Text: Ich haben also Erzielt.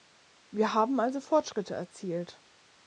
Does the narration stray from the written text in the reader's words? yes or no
yes